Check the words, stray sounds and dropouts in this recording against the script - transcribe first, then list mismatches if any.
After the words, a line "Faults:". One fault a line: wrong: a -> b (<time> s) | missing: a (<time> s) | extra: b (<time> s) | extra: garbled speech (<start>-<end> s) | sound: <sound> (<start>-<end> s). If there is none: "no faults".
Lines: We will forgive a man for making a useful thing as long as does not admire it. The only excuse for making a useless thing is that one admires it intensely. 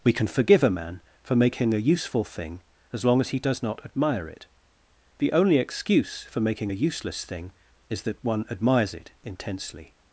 We can forgive a man for making a useful thing as long as he does not admire it. The only excuse for making a useless thing is that one admires it intensely.
Faults:
wrong: will -> can (0.1 s)
extra: he (3.3 s)